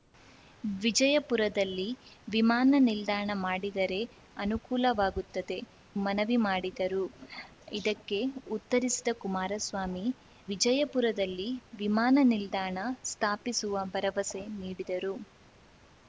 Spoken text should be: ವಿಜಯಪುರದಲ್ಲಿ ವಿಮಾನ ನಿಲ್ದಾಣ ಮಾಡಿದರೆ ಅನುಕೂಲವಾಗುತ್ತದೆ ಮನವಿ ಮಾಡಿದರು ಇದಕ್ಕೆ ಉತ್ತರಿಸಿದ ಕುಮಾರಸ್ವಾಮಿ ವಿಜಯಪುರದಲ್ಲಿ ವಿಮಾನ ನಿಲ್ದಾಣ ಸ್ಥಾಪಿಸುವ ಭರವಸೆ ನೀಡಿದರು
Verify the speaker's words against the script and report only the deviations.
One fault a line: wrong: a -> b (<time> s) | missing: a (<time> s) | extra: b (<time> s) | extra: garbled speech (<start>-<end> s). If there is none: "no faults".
no faults